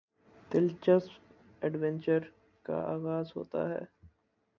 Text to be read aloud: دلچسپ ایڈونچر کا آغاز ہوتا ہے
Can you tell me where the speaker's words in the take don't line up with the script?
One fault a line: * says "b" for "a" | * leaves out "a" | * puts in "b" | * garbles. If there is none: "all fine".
all fine